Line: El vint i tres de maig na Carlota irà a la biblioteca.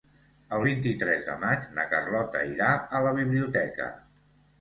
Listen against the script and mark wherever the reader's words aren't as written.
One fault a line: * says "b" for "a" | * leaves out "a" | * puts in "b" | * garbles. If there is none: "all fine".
all fine